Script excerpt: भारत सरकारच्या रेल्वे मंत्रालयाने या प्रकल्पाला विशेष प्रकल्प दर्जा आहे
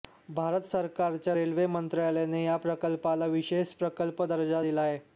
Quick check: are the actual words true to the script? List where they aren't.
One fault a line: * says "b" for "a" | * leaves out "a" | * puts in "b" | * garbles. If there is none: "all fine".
* puts in "दिला"